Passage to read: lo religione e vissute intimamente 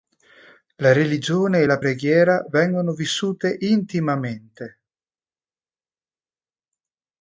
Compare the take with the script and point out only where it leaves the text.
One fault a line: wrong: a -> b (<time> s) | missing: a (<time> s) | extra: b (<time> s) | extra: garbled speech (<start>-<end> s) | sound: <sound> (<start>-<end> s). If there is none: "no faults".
wrong: lo -> la (0.8 s)
extra: la preghiera vengono (1.6 s)